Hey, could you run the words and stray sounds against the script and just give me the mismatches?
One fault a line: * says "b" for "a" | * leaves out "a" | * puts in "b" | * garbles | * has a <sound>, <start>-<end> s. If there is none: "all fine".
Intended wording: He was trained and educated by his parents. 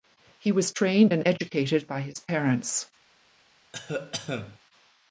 * has a cough, 3.7-4.6 s